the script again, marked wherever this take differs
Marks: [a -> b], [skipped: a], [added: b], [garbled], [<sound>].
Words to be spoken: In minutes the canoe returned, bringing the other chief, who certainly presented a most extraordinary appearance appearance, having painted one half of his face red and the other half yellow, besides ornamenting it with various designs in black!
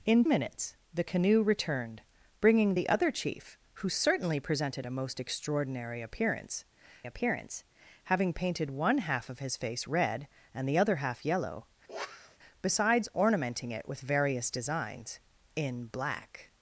In minutes the canoe returned, bringing the other chief, who certainly presented a most extraordinary appearance appearance, having painted one half of his face red and the other half yellow, [sniff] besides ornamenting it with various designs in black!